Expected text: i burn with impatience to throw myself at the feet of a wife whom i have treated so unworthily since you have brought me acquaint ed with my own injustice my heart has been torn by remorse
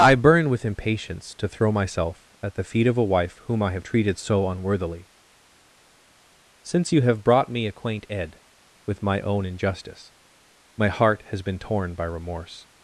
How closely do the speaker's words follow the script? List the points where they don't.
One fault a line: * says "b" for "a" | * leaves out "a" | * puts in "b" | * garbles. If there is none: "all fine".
all fine